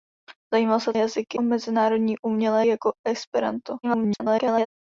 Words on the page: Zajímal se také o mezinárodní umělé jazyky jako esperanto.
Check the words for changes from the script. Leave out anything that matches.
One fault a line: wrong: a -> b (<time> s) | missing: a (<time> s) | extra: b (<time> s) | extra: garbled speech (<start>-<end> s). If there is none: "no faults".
wrong: také -> jazyky (1.0 s)
missing: jazyky (2.6 s)
extra: garbled speech (3.8-4.7 s)